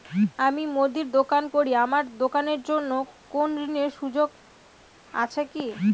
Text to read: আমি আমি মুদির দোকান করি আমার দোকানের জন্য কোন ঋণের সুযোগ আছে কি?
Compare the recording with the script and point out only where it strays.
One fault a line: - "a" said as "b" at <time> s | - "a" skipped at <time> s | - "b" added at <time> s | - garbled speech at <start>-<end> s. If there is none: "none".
- "আমি" skipped at 0.6 s